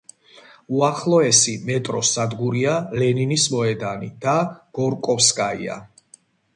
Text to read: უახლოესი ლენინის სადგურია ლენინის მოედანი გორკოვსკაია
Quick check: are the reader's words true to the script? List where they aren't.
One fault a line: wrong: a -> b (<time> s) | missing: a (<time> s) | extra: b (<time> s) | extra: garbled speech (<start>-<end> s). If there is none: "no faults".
wrong: ლენინის -> მეტროს (1.7 s)
extra: და (4.3 s)